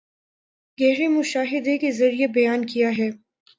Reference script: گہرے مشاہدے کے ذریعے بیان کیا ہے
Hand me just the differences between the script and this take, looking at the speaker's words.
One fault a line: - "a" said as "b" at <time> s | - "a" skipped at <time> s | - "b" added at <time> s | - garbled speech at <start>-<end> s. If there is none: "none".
none